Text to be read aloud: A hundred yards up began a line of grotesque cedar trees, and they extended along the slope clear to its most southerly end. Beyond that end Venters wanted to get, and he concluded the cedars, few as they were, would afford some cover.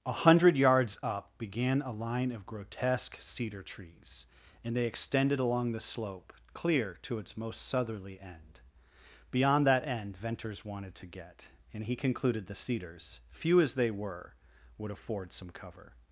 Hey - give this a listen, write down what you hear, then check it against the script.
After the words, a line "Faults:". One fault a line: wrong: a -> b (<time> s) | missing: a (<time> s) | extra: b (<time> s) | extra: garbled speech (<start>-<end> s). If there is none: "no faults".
A hundred yards up began a line of grotesque cedar trees, and they extended along the slope clear to its most southerly end. Beyond that end Venters wanted to get, and he concluded the cedars, few as they were, would afford some cover.
Faults:
no faults